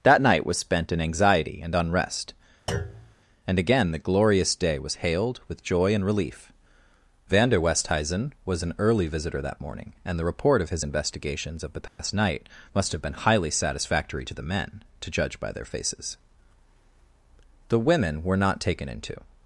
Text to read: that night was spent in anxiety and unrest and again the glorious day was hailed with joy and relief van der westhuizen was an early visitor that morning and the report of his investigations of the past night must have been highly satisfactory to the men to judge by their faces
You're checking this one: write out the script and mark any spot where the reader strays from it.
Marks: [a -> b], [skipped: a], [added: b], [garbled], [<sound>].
that night was spent in anxiety and unrest [thud] and again the glorious day was hailed with joy and relief van der westhuizen was an early visitor that morning and the report of his investigations of the past [dropout] night must have been highly satisfactory to the men to judge by their faces [added: the women were not taken into]